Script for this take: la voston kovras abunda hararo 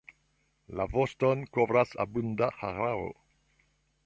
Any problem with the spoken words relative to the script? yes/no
no